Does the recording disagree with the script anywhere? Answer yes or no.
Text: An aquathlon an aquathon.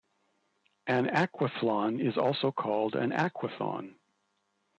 yes